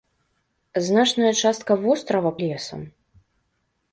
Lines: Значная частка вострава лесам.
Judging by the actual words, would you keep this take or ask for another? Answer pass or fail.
pass